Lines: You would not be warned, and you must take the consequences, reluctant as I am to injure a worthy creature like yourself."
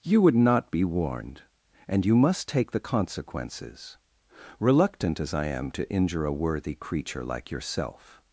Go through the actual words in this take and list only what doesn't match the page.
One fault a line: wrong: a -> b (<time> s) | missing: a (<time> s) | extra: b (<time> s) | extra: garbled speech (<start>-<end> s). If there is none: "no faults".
no faults